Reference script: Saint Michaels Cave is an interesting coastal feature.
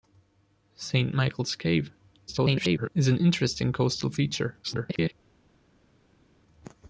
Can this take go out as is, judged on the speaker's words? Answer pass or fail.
fail